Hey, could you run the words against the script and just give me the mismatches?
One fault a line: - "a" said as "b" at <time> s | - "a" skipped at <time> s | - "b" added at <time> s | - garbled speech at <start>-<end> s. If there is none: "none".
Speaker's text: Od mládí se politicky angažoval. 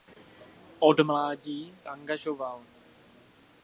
- "se politicky" skipped at 1.8 s